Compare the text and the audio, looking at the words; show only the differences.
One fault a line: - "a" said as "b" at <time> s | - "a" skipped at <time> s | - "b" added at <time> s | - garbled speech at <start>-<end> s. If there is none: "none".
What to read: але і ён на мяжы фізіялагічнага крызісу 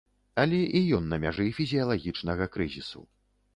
none